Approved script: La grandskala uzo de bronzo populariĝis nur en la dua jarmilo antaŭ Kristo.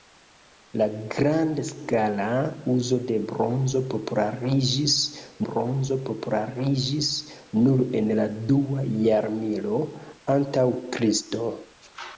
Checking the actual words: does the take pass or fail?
fail